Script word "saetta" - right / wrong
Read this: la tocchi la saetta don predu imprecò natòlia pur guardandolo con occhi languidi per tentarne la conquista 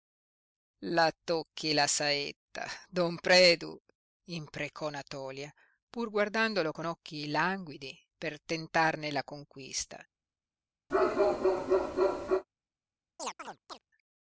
right